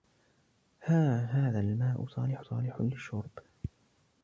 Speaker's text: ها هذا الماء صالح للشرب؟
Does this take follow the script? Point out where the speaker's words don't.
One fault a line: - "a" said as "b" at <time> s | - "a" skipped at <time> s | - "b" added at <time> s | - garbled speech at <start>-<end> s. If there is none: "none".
- "صالح" added at 2.4 s